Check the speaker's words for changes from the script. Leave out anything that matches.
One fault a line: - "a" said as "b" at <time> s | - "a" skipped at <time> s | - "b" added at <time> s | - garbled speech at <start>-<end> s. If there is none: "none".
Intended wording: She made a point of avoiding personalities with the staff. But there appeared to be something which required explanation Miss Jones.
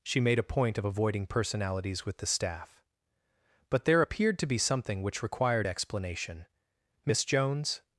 none